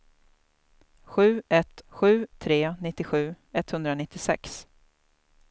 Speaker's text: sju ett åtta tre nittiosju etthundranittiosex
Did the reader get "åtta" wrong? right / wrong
wrong